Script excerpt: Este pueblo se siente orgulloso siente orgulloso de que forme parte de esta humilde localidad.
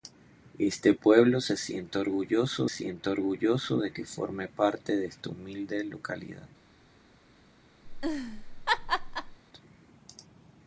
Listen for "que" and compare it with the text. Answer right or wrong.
right